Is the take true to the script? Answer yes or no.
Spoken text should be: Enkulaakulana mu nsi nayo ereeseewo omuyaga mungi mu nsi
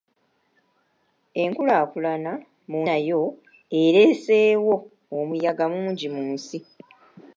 no